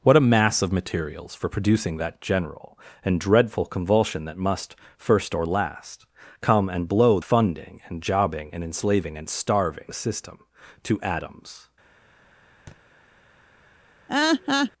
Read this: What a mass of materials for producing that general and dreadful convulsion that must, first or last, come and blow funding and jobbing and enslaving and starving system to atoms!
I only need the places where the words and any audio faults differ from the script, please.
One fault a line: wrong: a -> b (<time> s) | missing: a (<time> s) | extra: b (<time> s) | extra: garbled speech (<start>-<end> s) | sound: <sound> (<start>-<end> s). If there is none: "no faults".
sound: thud (12.7-12.8 s)
sound: laugh (14.1-14.7 s)